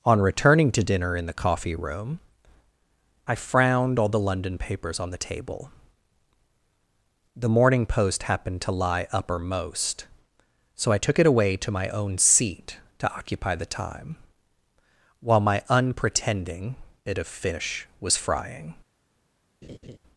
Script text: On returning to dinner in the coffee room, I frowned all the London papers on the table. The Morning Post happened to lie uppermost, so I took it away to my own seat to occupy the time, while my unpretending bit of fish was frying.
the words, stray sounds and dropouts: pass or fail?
fail